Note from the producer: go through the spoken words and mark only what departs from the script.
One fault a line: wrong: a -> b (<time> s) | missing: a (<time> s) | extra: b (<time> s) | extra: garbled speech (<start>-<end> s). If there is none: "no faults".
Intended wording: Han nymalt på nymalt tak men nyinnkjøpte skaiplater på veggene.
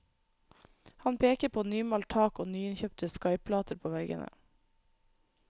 wrong: nymalt -> peker (1.2 s)
wrong: men -> og (2.4 s)